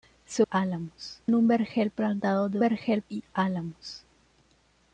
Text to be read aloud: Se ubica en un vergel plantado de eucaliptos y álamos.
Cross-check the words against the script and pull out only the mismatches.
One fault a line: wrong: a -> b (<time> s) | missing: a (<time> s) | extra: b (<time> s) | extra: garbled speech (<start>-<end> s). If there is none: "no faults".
wrong: ubica -> álamos (0.5 s)
wrong: eucaliptos -> vergel (2.6 s)